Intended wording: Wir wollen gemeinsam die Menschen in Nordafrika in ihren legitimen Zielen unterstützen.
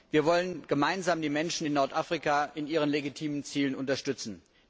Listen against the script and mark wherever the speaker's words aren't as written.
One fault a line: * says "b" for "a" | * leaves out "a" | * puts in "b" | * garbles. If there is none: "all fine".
all fine